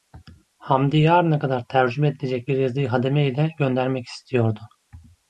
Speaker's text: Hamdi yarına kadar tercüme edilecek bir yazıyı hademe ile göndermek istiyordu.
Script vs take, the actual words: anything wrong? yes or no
no